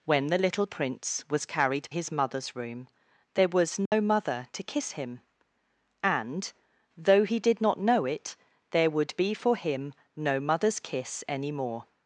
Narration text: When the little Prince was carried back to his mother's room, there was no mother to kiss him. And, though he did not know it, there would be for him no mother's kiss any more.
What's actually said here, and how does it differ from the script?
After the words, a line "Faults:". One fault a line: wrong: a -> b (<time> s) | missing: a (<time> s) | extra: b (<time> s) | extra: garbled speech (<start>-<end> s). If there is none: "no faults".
When the little Prince was carried his mother's room, there was no mother to kiss him. And, though he did not know it, there would be for him no mother's kiss any more.
Faults:
missing: back to (1.9 s)